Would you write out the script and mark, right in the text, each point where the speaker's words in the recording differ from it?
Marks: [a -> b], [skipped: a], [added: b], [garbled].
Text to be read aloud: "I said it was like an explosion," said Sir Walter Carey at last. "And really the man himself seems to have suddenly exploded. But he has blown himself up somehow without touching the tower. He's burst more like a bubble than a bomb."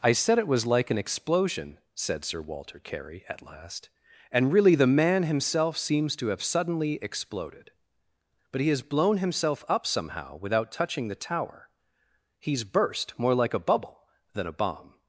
"I said it was like an explosion," said Sir Walter Carey at last. "And really the man himself seems to have suddenly exploded. But he has blown himself up somehow without touching the tower. He's burst more like a bubble than a bomb."